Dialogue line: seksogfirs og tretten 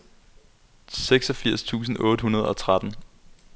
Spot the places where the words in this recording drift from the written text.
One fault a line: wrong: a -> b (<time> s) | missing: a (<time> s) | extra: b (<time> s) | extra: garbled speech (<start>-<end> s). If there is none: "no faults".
extra: tusind otte hundrede (1.6 s)